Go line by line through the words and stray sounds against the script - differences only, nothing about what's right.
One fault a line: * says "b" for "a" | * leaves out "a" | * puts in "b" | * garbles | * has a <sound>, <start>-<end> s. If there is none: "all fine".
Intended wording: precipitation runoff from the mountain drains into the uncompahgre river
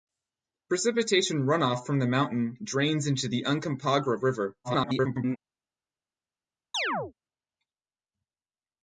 * garbles
* has a chirp, 6.7-7.1 s